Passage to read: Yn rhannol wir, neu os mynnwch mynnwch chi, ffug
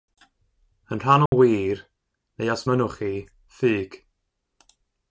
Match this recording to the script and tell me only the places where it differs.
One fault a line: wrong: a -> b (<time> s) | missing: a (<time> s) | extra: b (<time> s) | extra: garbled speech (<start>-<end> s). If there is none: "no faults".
missing: mynnwch (3.0 s)